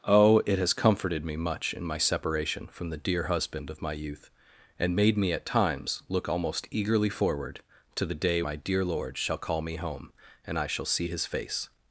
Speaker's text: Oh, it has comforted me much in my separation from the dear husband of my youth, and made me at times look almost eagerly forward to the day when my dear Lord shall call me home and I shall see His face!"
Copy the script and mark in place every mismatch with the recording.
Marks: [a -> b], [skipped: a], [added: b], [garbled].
Oh, it has comforted me much in my separation from the dear husband of my youth, and made me at times look almost eagerly forward to the day [skipped: when] my dear Lord shall call me home and I shall see His face!"